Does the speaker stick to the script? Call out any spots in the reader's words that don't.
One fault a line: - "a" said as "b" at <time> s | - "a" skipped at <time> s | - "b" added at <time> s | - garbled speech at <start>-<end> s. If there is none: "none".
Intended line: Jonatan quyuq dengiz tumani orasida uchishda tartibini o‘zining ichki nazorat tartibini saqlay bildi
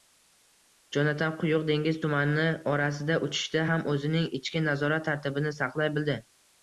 - "tartibini" said as "ham" at 3.7 s